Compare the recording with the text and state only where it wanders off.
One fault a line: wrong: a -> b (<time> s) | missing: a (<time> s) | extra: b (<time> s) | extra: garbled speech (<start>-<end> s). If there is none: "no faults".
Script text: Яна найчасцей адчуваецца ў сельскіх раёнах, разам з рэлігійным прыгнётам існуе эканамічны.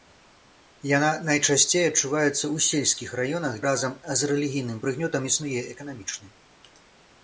no faults